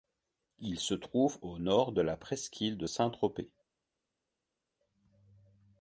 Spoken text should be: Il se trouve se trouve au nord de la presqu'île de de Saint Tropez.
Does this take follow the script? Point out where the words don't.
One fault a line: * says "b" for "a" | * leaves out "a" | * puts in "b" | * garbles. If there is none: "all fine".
* leaves out "se trouve"
* leaves out "de"